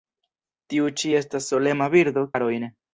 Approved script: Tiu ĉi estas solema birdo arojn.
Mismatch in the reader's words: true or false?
false